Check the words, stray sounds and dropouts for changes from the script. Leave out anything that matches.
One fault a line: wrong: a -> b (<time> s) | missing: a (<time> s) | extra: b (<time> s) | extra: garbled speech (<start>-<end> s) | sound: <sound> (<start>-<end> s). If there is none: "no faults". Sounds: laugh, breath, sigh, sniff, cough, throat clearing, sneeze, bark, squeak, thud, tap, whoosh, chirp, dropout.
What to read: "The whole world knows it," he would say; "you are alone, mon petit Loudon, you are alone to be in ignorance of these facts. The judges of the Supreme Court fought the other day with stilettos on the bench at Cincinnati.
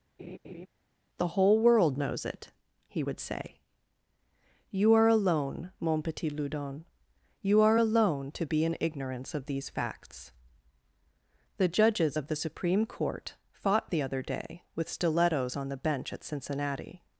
sound: laugh (0.2-0.7 s)